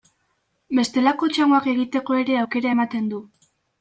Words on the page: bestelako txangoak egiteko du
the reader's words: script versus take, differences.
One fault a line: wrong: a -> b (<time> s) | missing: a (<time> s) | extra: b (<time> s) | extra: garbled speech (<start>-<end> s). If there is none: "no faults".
extra: ere aukera ematen (2.2 s)